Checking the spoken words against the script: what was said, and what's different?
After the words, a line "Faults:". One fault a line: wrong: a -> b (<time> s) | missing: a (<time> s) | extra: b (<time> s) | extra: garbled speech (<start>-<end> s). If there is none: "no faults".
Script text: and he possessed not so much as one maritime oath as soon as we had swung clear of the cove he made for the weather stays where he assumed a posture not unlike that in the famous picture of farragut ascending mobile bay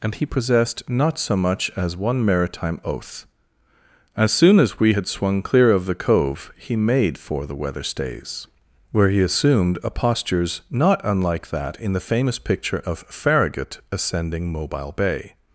and he possessed not so much as one maritime oath as soon as we had swung clear of the cove he made for the weather stays where he assumed a postures not unlike that in the famous picture of farragut ascending mobile bay
Faults:
wrong: posture -> postures (9.9 s)